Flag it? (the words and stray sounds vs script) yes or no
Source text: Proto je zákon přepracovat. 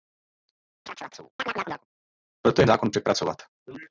yes